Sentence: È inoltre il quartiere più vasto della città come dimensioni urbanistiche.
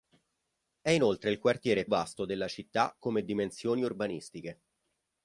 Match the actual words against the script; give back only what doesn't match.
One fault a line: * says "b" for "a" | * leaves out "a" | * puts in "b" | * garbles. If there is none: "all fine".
* leaves out "più"